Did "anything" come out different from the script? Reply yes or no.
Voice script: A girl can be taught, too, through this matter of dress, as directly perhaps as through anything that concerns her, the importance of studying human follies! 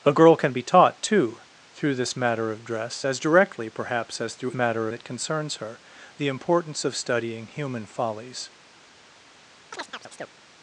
yes